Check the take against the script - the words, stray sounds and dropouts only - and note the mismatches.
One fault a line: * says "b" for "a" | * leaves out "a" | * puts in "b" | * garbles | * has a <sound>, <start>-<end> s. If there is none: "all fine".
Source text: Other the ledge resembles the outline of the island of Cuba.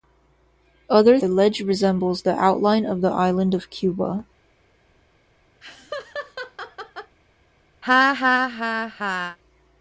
* has a laugh, 5.6-7.1 s
* has a laugh, 7.8-9.4 s